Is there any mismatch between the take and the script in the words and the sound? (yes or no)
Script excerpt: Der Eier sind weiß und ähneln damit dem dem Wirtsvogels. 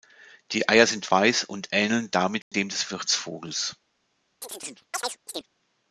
yes